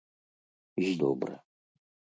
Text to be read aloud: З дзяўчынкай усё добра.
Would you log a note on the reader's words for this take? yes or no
yes